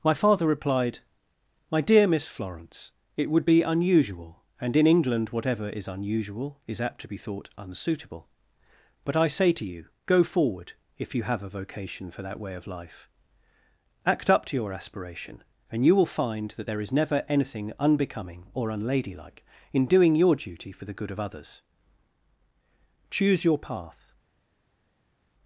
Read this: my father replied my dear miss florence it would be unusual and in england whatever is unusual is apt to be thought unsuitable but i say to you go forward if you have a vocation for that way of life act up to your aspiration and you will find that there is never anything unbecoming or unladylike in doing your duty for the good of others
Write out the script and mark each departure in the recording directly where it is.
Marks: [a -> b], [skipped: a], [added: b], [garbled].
my father replied my dear miss florence it would be unusual and in england whatever is unusual is apt to be thought unsuitable but i say to you go forward if you have a vocation for that way of life act up to your aspiration and you will find that there is never anything unbecoming or unladylike in doing your duty for the good of others [added: choose your path]